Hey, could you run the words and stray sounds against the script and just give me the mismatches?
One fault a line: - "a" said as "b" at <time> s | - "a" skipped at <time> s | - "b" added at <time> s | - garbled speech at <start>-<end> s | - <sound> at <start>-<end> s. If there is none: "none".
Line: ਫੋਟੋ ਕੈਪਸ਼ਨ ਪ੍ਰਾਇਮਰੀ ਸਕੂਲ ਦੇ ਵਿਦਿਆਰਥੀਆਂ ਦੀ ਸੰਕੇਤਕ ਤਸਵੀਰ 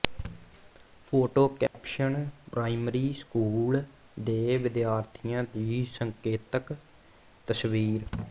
- dropout at 1.7-1.7 s